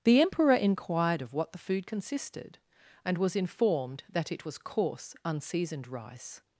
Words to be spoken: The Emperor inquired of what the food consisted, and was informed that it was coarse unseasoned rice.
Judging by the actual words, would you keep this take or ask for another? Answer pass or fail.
pass